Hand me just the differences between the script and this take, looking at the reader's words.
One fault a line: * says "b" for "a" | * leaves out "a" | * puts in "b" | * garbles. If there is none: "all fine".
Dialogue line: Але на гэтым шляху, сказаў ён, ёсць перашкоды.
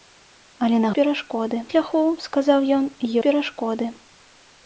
* says "перашкоды" for "гэтым"
* leaves out "ёсць"